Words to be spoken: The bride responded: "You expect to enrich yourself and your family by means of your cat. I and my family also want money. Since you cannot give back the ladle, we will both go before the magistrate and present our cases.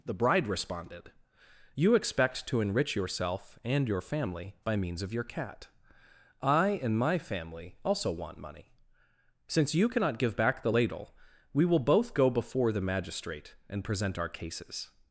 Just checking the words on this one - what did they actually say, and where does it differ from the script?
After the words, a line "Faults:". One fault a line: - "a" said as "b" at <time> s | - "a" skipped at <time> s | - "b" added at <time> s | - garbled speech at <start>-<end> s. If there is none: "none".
The bride responded: "You expect to enrich yourself and your family by means of your cat. I and my family also want money. Since you cannot give back the ladle, we will both go before the magistrate and present our cases.
Faults:
none